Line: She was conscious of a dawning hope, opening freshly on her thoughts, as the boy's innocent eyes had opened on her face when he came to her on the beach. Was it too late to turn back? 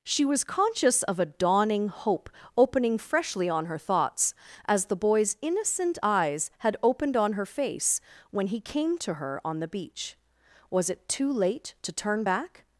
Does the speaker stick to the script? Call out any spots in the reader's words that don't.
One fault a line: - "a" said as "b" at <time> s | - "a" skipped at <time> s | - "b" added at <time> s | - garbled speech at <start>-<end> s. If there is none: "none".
none